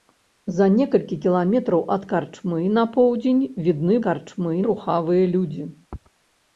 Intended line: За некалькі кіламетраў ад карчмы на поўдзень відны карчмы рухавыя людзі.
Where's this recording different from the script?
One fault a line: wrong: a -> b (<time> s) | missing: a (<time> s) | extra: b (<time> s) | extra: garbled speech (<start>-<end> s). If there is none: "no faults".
no faults